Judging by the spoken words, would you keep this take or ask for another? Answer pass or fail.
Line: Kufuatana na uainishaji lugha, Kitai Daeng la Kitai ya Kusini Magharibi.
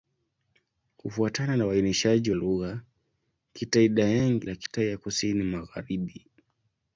pass